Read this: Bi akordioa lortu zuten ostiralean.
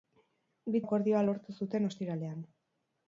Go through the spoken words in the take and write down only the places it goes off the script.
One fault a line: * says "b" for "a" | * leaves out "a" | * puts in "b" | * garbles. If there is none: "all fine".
all fine